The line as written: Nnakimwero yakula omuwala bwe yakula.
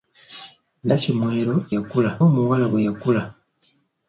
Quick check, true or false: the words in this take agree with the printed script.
true